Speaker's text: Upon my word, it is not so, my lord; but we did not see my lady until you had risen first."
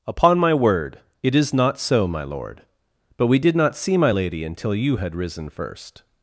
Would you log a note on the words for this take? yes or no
no